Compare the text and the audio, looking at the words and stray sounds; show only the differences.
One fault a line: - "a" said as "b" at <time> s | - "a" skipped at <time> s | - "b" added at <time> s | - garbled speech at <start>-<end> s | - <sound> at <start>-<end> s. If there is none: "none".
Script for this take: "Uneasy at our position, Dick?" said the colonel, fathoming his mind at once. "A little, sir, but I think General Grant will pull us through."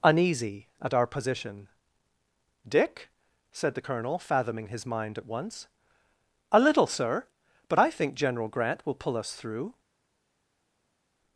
none